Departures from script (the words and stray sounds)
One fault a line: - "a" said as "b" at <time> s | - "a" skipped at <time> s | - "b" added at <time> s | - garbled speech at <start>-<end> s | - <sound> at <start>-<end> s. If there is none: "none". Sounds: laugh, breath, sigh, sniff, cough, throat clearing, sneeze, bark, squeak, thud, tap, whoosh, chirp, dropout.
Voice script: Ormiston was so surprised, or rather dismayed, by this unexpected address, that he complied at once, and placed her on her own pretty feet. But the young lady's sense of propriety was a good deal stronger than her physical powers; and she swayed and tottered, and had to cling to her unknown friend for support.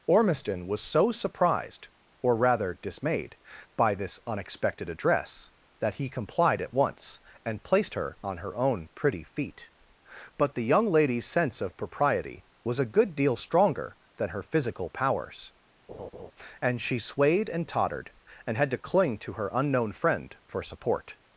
- laugh at 15.9-16.3 s